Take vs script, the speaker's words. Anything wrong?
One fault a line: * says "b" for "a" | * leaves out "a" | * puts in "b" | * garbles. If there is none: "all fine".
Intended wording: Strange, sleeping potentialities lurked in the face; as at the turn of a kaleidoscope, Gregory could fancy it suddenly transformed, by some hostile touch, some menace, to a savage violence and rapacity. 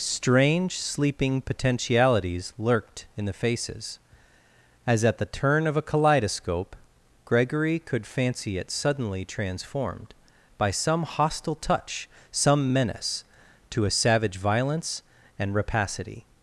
* says "faces" for "face"